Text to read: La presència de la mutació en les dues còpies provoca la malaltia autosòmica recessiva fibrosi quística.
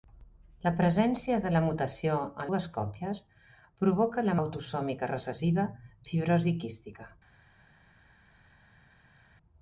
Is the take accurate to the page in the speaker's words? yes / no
no